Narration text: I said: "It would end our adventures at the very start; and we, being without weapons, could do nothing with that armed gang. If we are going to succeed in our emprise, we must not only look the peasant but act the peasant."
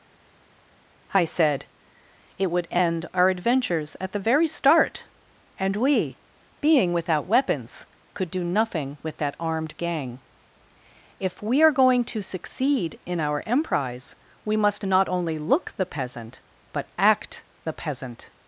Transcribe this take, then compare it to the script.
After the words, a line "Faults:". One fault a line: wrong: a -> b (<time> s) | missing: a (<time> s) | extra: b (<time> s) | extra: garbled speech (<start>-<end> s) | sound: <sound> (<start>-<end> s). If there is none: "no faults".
I said: "It would end our adventures at the very start; and we, being without weapons, could do nothing with that armed gang. If we are going to succeed in our emprise, we must not only look the peasant but act the peasant."
Faults:
no faults